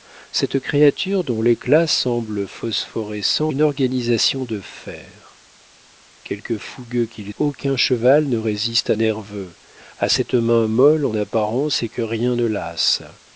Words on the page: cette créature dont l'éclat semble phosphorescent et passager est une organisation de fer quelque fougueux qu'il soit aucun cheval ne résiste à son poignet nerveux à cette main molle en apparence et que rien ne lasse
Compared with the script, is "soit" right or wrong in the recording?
wrong